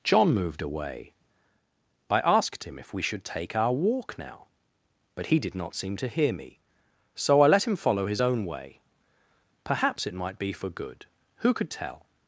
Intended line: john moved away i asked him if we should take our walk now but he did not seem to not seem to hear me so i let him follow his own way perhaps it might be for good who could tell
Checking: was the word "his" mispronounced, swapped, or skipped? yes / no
no